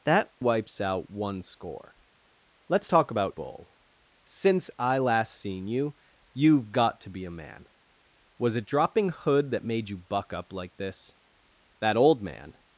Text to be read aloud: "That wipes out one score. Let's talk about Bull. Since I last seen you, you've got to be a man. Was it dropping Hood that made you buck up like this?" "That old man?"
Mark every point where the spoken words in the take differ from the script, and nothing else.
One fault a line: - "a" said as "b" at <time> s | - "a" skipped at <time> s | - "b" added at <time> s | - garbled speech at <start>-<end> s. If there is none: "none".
none